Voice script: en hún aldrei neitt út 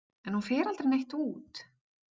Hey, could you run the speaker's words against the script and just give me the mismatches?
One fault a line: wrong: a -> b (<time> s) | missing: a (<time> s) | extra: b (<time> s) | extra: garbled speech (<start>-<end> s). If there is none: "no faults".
extra: fer (0.5 s)